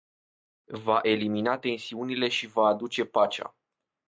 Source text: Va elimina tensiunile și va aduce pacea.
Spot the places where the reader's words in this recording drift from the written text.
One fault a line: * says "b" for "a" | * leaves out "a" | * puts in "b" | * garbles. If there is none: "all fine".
all fine